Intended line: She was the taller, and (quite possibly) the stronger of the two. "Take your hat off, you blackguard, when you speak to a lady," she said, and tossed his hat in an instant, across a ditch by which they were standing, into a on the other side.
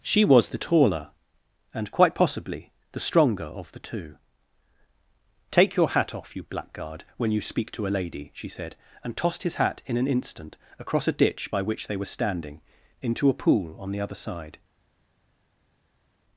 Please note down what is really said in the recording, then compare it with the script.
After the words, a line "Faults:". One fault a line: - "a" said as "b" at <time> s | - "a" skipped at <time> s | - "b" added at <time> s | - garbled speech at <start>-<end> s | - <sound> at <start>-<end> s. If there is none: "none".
She was the taller, and (quite possibly) the stronger of the two. "Take your hat off, you blackguard, when you speak to a lady," she said, and tossed his hat in an instant, across a ditch by which they were standing, into a pool on the other side.
Faults:
- "pool" added at 13.3 s